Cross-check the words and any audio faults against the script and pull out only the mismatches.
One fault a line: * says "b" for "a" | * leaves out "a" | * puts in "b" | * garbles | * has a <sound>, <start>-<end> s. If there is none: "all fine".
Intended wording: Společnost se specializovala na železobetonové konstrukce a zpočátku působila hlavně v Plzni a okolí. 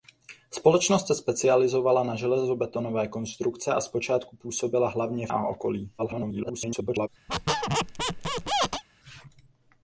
* leaves out "v Plzni"
* garbles
* has a squeak, 7.3-8.8 s